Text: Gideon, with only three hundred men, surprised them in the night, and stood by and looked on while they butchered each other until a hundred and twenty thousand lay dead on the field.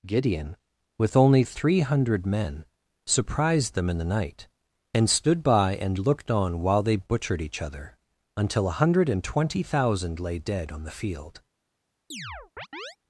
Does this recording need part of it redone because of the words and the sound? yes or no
yes